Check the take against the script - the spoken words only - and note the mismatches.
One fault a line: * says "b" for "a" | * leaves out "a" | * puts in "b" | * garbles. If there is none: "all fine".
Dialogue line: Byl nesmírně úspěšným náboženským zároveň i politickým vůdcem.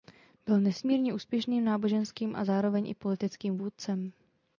* puts in "a"